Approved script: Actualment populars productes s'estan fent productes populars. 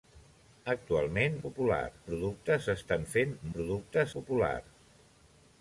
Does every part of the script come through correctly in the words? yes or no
yes